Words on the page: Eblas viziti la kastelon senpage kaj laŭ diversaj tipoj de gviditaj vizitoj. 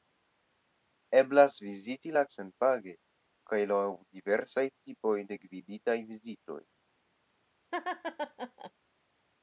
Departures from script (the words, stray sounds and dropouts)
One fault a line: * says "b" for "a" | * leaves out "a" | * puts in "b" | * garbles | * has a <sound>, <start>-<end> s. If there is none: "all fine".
* leaves out "kastelon"
* has a laugh, 7.7-8.7 s